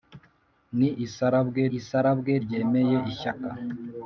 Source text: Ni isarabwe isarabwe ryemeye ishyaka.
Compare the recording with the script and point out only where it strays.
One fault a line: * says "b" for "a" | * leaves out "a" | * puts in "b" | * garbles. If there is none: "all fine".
all fine